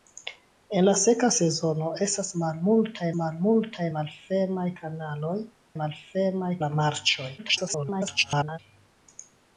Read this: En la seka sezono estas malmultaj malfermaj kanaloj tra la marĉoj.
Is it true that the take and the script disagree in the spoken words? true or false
true